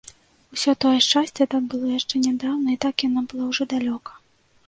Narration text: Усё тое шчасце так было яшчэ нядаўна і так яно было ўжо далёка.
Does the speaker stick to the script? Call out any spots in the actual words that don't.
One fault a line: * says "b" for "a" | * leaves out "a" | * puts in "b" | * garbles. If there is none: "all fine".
all fine